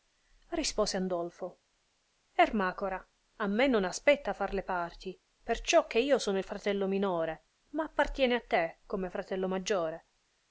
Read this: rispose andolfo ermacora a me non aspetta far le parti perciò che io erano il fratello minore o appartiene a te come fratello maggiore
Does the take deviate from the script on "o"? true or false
true